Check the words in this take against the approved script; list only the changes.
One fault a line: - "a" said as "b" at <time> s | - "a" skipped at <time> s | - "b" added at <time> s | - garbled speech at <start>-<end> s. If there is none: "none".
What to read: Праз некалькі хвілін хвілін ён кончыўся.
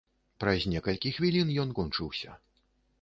- "хвілін" skipped at 1.5 s